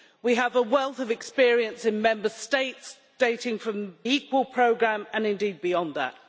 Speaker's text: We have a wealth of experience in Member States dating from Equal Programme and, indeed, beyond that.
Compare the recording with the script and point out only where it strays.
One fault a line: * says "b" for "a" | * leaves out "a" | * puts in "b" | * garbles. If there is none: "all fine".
all fine